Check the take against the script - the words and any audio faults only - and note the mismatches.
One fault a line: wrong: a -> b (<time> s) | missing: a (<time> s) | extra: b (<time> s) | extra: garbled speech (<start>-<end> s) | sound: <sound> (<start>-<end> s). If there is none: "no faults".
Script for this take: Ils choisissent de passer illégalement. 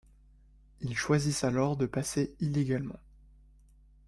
extra: alors (1.4 s)